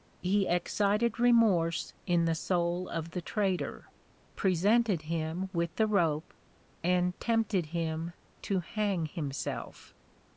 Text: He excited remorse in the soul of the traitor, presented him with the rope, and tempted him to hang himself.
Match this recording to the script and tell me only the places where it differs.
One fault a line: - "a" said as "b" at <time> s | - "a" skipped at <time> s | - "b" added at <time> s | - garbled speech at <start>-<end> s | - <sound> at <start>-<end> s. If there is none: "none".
none